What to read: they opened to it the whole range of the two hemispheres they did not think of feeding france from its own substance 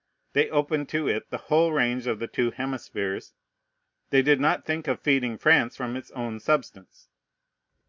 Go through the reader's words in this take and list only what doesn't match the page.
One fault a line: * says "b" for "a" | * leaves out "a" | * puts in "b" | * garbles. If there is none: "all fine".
all fine